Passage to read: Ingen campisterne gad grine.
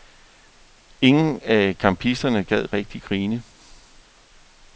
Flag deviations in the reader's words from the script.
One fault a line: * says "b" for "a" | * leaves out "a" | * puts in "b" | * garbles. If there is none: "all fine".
* puts in "af"
* puts in "rigtig"